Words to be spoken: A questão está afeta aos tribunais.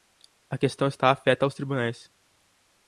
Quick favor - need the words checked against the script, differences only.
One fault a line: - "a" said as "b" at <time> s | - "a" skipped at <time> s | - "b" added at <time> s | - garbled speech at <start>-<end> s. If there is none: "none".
none